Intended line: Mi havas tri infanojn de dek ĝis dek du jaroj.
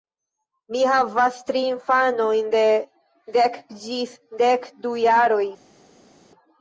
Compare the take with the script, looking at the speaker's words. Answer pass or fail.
pass